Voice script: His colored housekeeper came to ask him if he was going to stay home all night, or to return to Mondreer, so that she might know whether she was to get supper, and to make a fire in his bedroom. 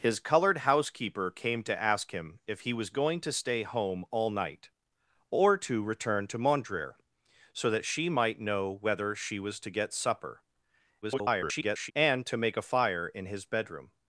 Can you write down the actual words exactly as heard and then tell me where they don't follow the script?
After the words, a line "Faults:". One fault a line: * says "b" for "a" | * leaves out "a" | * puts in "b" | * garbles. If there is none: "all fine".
His colored housekeeper came to ask him if he was going to stay home all night, or to return to Mondreer, so that she might know whether she was to get supper, [garbled] and to make a fire in his bedroom.
Faults:
* garbles